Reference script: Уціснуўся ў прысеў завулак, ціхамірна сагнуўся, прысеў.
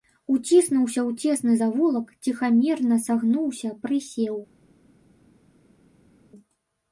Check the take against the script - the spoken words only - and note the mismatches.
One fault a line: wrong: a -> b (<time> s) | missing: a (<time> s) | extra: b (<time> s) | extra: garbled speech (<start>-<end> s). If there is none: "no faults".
wrong: прысеў -> цесны (1.3 s)